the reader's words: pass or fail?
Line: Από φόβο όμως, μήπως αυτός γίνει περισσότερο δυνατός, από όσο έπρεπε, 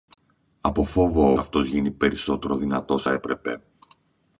fail